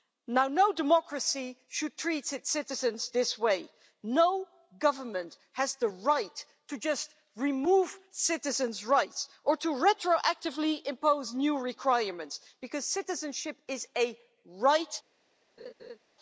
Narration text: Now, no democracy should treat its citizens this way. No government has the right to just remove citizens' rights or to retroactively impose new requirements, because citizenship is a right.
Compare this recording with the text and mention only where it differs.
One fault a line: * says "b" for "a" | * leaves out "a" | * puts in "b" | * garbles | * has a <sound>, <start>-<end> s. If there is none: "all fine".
* has a laugh, 15.6-16.0 s